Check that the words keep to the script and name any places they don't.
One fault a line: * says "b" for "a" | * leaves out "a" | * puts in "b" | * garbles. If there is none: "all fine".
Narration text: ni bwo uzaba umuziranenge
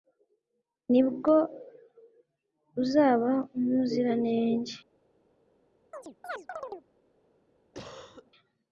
all fine